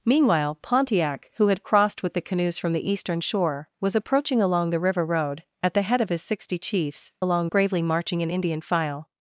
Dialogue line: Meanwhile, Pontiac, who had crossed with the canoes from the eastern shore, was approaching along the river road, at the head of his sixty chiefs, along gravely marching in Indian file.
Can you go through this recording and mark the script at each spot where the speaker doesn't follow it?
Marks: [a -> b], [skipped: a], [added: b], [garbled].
Meanwhile, Pontiac, who had crossed with the canoes from the eastern shore, was approaching along the river road, at the head of his sixty chiefs, along gravely marching in Indian file.